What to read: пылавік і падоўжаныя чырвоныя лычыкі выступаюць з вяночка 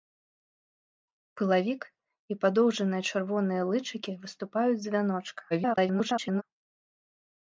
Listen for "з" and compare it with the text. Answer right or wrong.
right